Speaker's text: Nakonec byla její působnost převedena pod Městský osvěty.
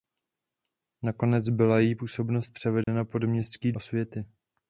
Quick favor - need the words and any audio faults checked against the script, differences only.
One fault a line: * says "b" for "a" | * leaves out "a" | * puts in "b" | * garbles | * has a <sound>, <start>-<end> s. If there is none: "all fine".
* has a dropout, 2.8-2.9 s